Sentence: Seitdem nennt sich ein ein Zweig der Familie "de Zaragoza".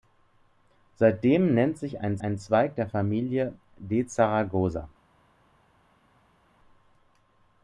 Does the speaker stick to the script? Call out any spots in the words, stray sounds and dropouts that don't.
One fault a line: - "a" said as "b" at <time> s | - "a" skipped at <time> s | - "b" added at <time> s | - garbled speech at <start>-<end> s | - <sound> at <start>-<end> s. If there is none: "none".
none